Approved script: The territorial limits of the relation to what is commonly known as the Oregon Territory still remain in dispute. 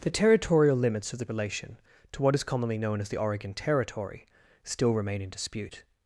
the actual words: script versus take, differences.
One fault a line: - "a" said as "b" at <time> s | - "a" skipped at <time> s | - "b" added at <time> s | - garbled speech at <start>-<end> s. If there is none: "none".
none